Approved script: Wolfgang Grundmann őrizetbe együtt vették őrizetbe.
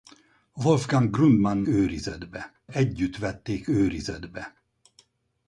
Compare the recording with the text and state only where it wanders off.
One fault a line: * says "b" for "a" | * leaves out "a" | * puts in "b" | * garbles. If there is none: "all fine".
all fine